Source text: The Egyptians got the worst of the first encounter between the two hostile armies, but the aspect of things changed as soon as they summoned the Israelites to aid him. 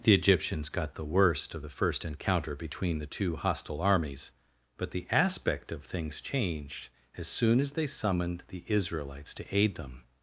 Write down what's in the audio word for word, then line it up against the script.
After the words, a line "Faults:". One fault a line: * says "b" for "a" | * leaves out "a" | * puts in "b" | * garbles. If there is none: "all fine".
The Egyptians got the worst of the first encounter between the two hostile armies, but the aspect of things changed as soon as they summoned the Israelites to aid them.
Faults:
* says "them" for "him"